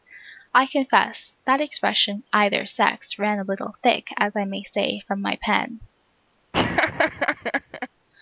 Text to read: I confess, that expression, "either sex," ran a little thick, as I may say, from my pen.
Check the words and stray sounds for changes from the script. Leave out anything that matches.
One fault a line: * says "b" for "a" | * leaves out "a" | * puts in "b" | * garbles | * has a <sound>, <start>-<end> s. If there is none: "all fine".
* has a laugh, 6.5-7.9 s